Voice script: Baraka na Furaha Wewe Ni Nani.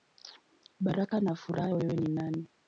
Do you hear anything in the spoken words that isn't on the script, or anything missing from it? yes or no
no